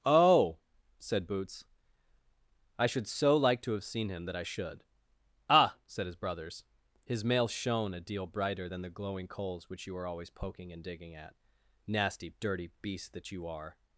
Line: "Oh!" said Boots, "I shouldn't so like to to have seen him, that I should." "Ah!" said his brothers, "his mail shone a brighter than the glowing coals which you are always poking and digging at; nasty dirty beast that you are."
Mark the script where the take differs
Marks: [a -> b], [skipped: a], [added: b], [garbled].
"Oh!" said Boots, "I [shouldn't -> should] so like to [skipped: to] have seen him, that I should." "Ah!" said his brothers, "his mail shone a [added: deal] brighter than the glowing coals which you are always poking and digging at; nasty dirty beast that you are."